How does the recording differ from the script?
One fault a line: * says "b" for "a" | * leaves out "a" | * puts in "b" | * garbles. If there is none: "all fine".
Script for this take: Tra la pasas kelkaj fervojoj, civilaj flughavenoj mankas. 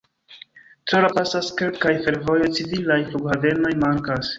all fine